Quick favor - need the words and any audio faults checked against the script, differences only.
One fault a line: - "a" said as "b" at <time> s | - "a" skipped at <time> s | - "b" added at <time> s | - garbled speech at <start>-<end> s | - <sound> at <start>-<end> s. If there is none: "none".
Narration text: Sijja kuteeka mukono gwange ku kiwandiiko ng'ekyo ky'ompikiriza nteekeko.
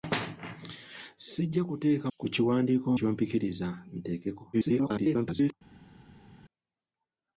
- "mukono gwange" skipped at 2.1 s
- "ng'ekyo" skipped at 2.9 s
- garbled speech at 4.5-5.5 s